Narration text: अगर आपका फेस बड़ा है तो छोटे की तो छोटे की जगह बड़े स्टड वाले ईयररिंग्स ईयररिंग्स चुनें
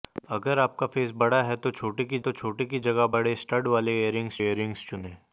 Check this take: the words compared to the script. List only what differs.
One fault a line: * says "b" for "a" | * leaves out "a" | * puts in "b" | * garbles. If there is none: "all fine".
all fine